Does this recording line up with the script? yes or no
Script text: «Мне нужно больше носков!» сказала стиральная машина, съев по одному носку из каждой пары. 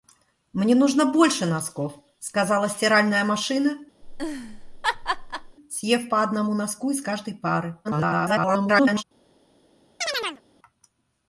no